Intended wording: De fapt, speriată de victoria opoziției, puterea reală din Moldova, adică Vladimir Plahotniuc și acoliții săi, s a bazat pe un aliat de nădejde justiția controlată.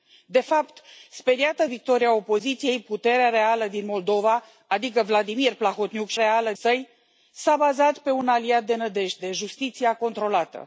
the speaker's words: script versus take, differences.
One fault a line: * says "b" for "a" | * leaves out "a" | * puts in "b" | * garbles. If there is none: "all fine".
* leaves out "de"
* says "reală" for "acoliții"